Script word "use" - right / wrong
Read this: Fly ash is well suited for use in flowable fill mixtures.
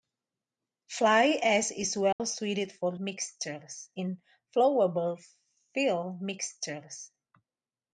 wrong